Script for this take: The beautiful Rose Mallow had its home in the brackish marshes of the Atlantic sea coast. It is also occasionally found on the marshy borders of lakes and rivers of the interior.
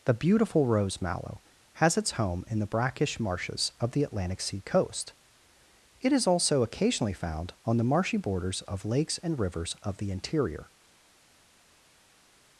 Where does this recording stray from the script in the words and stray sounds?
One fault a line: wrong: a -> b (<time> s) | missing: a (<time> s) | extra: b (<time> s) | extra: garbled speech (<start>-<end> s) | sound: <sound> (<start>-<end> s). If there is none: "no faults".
wrong: had -> has (1.7 s)